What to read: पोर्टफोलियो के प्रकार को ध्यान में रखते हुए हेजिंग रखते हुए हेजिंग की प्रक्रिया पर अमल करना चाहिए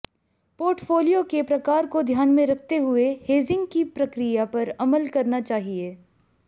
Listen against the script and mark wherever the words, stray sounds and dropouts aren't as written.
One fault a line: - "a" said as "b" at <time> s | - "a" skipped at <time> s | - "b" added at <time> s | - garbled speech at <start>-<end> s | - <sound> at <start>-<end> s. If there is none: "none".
- "रखते हुए हेजिंग" skipped at 3.7 s